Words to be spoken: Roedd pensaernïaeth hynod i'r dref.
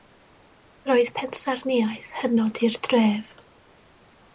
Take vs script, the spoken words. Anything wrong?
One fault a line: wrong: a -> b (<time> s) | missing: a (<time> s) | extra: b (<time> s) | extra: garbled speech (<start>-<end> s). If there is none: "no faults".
no faults